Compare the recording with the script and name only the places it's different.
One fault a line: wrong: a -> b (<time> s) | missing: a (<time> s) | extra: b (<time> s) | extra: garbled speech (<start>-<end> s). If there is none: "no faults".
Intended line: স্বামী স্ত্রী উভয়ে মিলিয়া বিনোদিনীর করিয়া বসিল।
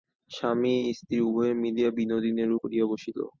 no faults